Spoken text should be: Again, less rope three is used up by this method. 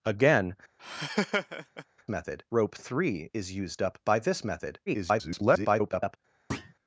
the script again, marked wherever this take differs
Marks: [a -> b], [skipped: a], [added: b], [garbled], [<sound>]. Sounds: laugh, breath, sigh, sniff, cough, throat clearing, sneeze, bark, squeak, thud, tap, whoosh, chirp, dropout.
Again, [laugh] [less -> method] rope three is used up by this method. [garbled] [thud]